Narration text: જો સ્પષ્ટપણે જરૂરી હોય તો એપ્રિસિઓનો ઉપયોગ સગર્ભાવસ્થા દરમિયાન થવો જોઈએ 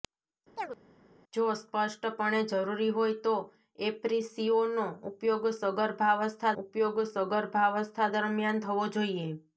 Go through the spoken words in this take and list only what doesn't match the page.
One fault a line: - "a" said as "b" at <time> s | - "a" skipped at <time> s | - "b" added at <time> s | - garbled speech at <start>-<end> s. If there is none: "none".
- "ઉપયોગ સગર્ભાવસ્થા" added at 6.6 s